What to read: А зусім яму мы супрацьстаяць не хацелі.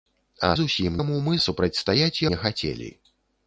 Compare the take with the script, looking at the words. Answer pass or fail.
pass